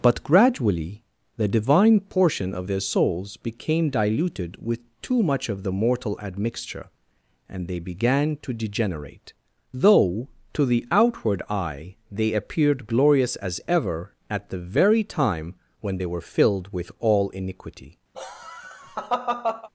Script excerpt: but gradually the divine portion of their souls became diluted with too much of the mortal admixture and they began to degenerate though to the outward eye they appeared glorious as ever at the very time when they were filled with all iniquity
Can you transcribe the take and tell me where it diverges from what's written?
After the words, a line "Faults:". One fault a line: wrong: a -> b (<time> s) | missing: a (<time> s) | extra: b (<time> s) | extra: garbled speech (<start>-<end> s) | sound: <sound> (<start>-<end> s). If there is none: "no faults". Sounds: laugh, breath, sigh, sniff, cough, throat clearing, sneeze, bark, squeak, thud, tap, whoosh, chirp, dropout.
but gradually the divine portion of their souls became diluted with too much of the mortal admixture and they began to degenerate though to the outward eye they appeared glorious as ever at the very time when they were filled with all iniquity
Faults:
sound: laugh (18.1-19.7 s)